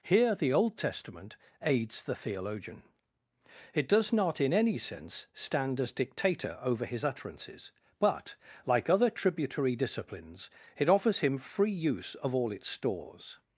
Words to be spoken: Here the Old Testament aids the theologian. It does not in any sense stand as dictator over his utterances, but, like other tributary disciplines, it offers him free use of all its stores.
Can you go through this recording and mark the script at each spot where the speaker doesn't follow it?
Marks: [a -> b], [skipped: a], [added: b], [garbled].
Here the Old Testament aids the theologian. It does not in any sense stand as dictator over his utterances, but, like other tributary disciplines, it offers him free use of all its stores.